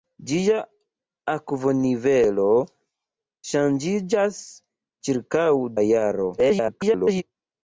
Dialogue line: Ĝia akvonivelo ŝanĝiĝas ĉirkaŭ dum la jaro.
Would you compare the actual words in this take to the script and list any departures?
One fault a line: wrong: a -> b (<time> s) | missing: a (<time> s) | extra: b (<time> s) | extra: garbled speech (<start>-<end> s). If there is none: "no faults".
missing: dum (5.5 s)
extra: garbled speech (6.4-7.2 s)